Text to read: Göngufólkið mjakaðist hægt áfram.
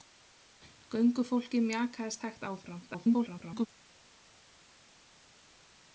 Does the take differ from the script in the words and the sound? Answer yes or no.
yes